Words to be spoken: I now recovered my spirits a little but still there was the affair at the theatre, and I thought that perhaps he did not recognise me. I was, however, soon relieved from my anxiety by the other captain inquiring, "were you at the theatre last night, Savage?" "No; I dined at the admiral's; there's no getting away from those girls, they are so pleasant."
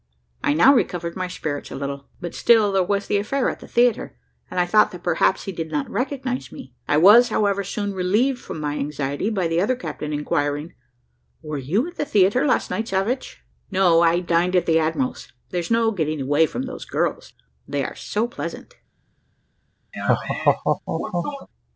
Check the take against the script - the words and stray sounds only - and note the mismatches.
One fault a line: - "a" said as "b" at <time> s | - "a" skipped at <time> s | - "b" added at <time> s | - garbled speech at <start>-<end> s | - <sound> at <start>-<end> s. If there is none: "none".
- laugh at 19.9-21.5 s